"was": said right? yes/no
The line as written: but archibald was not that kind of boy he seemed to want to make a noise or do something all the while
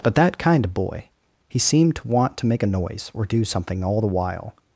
no